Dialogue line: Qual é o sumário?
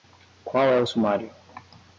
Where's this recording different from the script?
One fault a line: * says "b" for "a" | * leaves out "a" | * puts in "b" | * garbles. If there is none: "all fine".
all fine